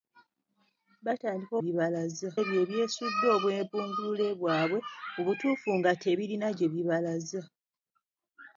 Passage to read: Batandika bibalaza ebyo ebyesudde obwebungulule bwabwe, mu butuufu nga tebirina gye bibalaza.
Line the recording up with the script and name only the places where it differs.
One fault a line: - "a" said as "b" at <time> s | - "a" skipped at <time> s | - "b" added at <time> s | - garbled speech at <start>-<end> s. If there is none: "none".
none